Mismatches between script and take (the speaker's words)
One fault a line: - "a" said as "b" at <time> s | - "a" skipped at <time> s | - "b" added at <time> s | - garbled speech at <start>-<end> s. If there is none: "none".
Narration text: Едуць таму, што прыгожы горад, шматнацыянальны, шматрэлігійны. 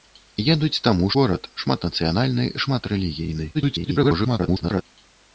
- "што прыгожы" skipped at 1.1 s
- garbled speech at 3.5-4.8 s